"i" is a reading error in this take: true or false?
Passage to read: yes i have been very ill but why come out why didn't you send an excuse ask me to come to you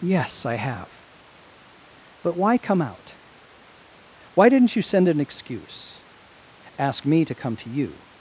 false